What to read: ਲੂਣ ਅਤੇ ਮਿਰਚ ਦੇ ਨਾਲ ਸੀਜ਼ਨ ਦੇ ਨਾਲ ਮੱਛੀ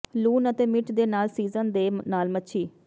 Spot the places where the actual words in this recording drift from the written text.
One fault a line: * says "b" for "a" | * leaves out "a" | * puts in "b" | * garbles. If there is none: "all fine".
all fine